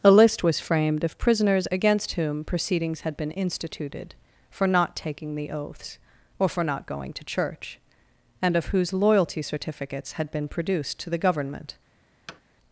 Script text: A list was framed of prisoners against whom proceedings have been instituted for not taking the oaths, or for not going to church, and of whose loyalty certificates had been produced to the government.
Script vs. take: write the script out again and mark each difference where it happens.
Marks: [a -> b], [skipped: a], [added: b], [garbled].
A list was framed of prisoners against whom proceedings [have -> had] been instituted for not taking the oaths, or for not going to church, and of whose loyalty certificates had been produced to the government.